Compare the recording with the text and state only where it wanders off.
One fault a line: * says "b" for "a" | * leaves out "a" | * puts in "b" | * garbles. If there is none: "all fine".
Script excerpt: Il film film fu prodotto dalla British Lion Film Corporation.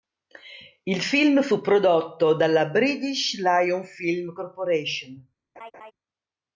* leaves out "film"